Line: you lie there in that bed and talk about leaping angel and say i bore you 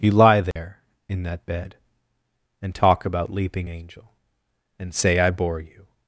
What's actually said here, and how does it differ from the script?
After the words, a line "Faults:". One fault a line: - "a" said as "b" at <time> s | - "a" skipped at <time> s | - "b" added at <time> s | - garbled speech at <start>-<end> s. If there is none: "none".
you lie there in that bed and talk about leaping angel and say i bore you
Faults:
none